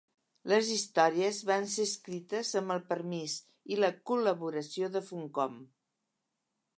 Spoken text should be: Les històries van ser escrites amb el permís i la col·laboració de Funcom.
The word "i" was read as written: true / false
true